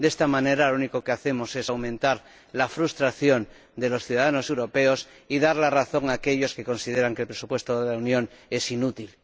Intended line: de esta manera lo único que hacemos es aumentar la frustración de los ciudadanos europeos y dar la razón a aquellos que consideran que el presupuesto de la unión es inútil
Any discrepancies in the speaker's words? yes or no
no